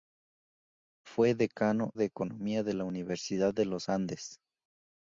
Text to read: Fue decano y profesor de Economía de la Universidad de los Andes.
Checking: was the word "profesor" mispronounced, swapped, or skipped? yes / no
yes